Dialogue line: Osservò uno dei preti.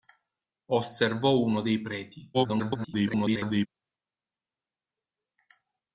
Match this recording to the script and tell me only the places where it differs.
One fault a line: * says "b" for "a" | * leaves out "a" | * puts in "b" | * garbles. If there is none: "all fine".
* garbles